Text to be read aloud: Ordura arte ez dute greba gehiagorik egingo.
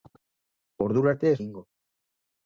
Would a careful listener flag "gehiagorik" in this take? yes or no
yes